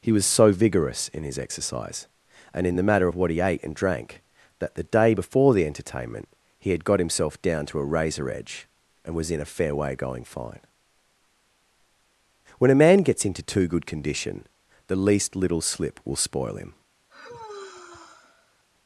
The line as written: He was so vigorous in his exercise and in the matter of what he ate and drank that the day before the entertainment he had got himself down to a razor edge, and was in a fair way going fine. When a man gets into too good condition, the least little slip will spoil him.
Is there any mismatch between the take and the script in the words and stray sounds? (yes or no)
yes